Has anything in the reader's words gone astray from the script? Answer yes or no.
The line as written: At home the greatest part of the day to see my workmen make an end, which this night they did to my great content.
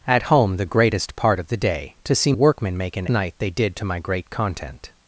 yes